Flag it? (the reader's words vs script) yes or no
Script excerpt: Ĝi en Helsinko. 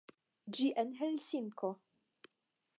no